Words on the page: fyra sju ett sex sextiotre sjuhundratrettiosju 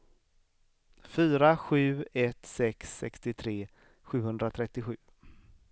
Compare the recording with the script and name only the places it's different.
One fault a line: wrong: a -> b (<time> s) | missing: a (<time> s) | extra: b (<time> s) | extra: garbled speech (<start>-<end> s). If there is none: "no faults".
no faults